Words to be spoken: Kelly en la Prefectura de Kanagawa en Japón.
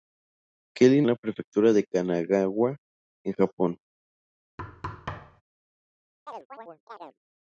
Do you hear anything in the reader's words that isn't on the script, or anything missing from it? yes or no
no